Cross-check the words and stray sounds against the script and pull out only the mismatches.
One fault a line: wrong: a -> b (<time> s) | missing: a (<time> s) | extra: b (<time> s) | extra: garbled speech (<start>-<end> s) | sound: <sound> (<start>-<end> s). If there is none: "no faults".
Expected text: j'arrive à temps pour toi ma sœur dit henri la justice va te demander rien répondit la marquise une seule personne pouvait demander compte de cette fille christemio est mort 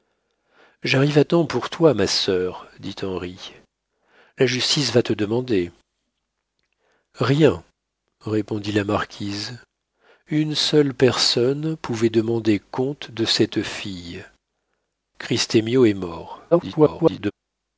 extra: garbled speech (16.5-17.3 s)